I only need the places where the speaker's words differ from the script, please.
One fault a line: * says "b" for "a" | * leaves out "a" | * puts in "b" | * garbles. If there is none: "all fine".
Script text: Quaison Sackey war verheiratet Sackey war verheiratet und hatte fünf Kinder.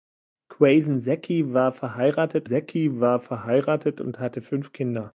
all fine